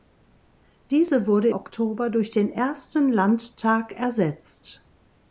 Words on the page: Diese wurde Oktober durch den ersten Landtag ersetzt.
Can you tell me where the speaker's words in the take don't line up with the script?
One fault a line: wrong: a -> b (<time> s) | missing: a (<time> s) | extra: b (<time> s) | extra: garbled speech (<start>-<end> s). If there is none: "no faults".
no faults